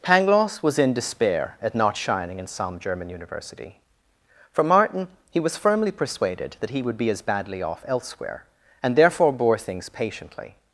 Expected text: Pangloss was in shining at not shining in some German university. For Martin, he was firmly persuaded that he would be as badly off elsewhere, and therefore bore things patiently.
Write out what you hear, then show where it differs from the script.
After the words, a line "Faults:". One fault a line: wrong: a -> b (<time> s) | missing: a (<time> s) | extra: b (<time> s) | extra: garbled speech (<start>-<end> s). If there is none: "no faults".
Pangloss was in despair at not shining in some German university. For Martin, he was firmly persuaded that he would be as badly off elsewhere, and therefore bore things patiently.
Faults:
wrong: shining -> despair (0.9 s)